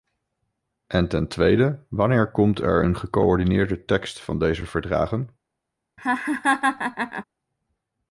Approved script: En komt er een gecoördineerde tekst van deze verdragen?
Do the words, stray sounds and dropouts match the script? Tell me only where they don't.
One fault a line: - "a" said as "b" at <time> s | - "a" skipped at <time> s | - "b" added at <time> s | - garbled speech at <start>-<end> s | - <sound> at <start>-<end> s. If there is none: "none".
- "ten tweede wanneer" added at 1.1 s
- laugh at 6.0-7.2 s